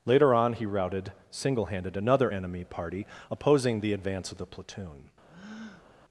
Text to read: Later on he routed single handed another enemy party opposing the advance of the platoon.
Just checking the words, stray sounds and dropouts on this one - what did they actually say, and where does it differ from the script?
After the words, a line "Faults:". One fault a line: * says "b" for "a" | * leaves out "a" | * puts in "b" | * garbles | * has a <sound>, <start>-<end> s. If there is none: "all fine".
Later on he routed single handed another enemy party opposing the advance of the platoon.
Faults:
* has a breath, 5.3-5.9 s